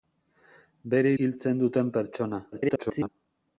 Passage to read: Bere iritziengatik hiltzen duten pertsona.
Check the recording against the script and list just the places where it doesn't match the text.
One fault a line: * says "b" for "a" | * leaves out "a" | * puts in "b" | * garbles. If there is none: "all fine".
* leaves out "iritziengatik"
* garbles